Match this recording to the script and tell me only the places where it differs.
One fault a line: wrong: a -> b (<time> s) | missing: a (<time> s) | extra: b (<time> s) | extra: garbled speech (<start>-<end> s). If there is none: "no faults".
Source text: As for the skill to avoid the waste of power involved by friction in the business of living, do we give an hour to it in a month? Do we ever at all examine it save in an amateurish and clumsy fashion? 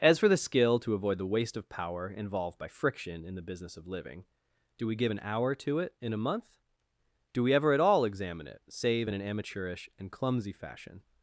no faults